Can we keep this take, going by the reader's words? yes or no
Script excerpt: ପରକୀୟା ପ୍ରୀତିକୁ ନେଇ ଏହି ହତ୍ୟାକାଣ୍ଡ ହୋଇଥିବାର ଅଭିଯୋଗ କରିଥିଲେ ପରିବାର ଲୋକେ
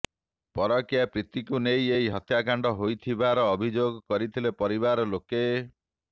yes